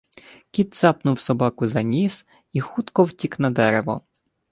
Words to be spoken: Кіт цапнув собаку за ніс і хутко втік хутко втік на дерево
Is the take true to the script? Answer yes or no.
no